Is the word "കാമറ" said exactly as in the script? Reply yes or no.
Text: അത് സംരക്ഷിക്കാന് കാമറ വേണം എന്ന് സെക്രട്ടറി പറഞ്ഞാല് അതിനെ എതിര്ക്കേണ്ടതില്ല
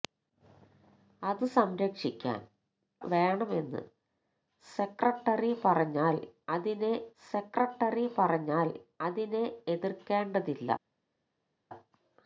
no